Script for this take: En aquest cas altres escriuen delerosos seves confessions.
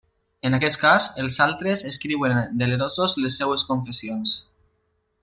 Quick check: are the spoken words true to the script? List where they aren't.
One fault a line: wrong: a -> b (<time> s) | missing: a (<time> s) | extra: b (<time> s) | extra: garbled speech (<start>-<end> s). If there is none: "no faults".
extra: els (1.2 s)
extra: les (3.2 s)